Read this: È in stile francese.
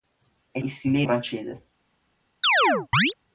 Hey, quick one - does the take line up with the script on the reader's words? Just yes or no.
yes